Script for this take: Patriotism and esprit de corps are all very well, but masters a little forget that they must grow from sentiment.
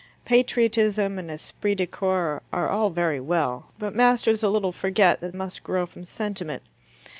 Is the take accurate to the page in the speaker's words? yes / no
no